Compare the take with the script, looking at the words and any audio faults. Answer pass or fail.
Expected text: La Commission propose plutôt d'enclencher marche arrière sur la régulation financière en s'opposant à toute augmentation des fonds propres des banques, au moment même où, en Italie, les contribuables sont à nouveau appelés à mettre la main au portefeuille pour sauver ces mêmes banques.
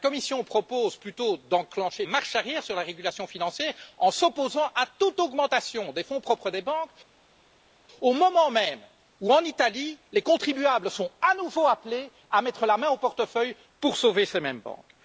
pass